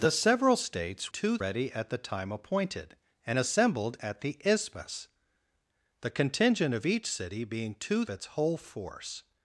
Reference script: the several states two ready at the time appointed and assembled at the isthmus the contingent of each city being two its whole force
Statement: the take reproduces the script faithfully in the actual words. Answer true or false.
true